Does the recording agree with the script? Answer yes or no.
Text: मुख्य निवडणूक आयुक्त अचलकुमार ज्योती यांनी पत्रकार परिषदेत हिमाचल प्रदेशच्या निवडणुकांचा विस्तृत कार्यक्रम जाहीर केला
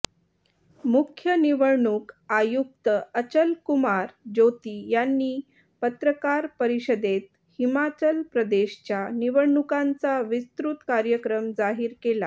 yes